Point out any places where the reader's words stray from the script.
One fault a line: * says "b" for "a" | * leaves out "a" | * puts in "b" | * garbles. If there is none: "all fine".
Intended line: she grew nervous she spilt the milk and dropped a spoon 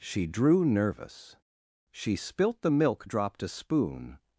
* says "drew" for "grew"
* leaves out "and"